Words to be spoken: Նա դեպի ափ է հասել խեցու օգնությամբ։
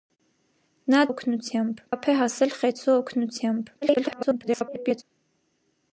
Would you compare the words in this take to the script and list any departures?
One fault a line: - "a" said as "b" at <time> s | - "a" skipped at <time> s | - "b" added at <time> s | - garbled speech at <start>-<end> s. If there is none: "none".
- "դեպի" said as "օգնությամբ" at 1.1 s
- garbled speech at 3.8-5.0 s